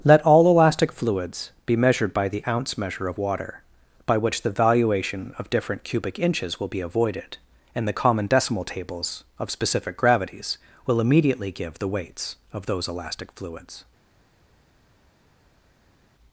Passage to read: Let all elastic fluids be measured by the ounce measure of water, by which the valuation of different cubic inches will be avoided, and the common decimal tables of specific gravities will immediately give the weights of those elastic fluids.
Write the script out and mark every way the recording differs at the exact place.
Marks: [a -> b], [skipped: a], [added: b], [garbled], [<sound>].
Let all elastic fluids be measured by the ounce measure of water, by which the valuation of different cubic inches will be avoided, and the common decimal tables of specific gravities will immediately give the weights of those elastic fluids.